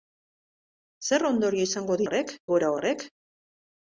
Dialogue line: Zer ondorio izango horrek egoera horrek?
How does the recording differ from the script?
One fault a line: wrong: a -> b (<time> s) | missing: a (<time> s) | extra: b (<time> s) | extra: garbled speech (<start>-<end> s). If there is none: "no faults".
no faults